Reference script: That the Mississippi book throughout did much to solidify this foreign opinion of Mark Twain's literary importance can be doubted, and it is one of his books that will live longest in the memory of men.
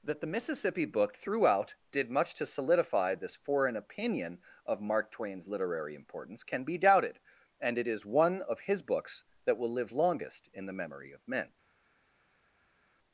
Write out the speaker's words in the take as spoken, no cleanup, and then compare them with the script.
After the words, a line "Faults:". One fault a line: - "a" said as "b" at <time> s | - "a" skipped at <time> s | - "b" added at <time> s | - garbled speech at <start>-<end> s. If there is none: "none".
That the Mississippi book throughout did much to solidify this foreign opinion of Mark Twain's literary importance can be doubted, and it is one of his books that will live longest in the memory of men.
Faults:
none